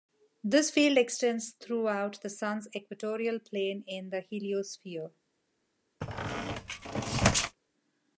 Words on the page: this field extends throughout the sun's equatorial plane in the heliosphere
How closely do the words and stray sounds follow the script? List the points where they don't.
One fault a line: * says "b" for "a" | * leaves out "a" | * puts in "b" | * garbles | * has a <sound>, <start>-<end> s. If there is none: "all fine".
* has a squeak, 6.0-7.6 s